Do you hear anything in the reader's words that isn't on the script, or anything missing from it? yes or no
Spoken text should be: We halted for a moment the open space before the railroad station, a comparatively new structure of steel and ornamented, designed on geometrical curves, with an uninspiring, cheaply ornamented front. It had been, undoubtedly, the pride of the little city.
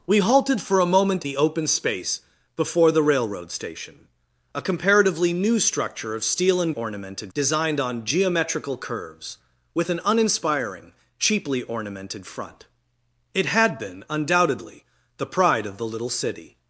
no